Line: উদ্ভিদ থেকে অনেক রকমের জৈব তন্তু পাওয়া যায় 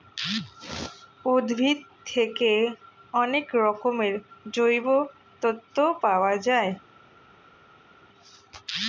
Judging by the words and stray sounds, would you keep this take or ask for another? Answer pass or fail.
pass